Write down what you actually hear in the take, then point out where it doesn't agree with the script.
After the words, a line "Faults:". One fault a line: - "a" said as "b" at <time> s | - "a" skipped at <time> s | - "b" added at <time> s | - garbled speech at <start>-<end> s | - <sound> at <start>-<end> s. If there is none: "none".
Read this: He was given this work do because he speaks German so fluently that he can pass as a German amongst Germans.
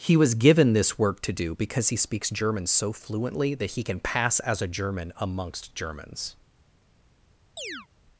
He was given this work to do because he speaks German so fluently that he can pass as a German amongst Germans.
Faults:
- "to" added at 1.2 s
- chirp at 7.6-7.9 s